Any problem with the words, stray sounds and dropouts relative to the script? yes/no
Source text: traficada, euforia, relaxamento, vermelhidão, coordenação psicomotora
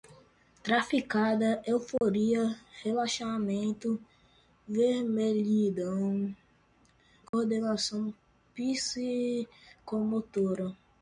yes